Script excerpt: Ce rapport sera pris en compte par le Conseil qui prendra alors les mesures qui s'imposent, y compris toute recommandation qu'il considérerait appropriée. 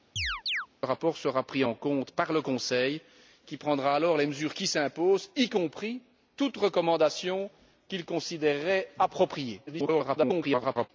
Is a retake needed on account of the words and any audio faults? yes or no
yes